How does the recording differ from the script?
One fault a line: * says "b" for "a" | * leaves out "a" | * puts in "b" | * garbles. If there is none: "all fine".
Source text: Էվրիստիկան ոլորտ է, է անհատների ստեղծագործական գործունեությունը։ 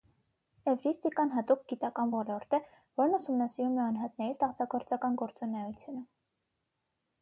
* puts in "հատուկ գիտական"
* puts in "որն ուսումնասիրում"